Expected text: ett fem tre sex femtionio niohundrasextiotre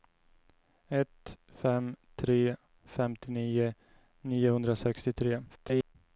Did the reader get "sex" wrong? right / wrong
wrong